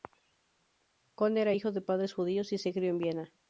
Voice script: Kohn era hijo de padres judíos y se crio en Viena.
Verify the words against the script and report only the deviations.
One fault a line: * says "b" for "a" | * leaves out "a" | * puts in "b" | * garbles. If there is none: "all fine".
all fine